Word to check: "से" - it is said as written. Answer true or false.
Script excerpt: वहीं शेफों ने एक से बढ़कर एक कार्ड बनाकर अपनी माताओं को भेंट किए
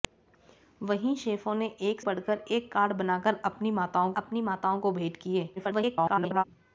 false